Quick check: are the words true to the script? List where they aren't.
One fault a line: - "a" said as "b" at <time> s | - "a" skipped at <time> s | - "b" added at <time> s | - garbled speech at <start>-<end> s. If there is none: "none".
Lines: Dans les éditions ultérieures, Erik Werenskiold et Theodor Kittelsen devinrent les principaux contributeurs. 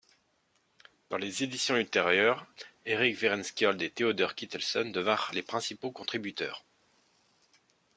none